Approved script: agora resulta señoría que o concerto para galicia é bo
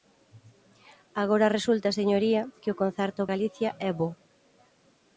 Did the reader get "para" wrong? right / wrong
wrong